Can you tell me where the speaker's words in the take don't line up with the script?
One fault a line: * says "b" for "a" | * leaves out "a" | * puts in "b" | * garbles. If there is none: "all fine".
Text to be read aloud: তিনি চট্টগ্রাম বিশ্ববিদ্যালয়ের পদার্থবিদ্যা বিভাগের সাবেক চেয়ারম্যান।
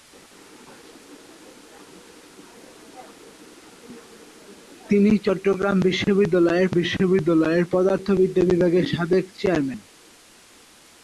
* puts in "বিশ্ববিদ্যালয়ের"